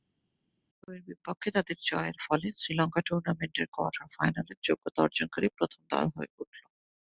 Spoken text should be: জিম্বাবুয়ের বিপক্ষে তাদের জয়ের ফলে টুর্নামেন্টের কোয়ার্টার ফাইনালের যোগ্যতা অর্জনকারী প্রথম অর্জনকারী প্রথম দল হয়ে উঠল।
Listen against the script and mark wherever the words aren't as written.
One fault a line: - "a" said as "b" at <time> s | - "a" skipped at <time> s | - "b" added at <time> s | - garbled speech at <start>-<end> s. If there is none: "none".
- "শ্রীলঙ্কা" added at 2.6 s
- "অর্জনকারী প্রথম" skipped at 5.8 s